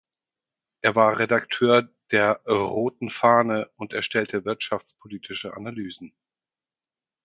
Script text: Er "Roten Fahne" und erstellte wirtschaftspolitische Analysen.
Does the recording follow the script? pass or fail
fail